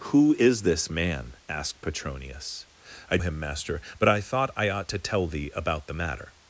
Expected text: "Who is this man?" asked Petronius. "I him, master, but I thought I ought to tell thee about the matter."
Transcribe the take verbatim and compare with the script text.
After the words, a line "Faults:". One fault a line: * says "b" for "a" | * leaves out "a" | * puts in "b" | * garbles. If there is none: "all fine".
"Who is this man?" asked Petronius. "I him, master, but I thought I ought to tell thee about the matter."
Faults:
all fine